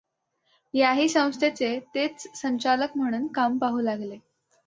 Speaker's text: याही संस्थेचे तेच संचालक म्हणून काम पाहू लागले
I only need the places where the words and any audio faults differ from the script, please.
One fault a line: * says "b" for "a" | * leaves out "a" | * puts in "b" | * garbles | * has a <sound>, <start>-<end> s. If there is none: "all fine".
all fine